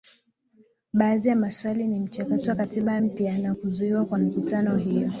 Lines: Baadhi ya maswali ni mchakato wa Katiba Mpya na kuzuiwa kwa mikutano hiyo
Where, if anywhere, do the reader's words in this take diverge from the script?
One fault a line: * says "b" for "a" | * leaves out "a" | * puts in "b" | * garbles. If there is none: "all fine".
all fine